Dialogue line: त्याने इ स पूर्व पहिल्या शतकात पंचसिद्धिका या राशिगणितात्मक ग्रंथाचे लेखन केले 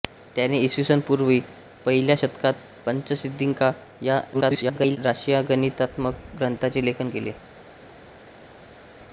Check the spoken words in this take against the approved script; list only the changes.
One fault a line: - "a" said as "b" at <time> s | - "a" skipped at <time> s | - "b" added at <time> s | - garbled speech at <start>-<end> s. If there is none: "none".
- garbled speech at 4.3-5.0 s